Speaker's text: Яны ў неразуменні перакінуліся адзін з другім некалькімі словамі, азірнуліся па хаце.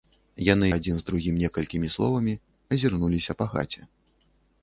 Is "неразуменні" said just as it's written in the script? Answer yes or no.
no